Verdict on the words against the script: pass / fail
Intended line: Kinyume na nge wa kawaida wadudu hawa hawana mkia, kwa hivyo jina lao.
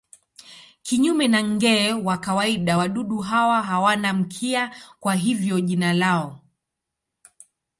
pass